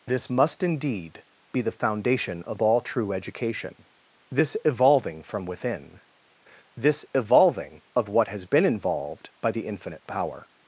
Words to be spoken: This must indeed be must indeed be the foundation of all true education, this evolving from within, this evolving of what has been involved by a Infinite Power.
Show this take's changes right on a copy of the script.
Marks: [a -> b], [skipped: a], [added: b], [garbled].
This must indeed be [skipped: must indeed be] the foundation of all true education, this evolving from within, this evolving of what has been involved by [a -> the] Infinite Power.